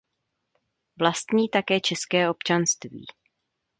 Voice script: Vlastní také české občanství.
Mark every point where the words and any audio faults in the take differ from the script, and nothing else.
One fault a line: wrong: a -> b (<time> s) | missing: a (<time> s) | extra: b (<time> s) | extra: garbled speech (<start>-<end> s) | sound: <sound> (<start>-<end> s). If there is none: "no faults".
no faults